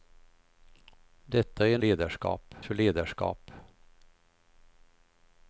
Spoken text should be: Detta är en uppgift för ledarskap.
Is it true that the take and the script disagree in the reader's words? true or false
true